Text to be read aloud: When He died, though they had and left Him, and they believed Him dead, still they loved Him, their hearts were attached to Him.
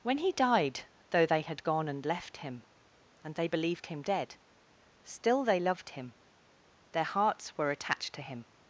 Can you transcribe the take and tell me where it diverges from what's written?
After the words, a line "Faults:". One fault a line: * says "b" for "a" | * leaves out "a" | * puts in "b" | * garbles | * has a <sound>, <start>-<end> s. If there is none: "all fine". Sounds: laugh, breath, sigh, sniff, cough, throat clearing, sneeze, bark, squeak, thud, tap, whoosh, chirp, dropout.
When He died, though they had gone and left Him, and they believed Him dead, still they loved Him, their hearts were attached to Him.
Faults:
* puts in "gone"